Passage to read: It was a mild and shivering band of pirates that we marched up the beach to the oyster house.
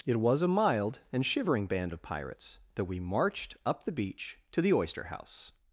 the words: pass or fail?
pass